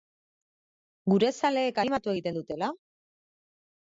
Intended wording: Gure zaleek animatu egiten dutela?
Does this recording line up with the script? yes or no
yes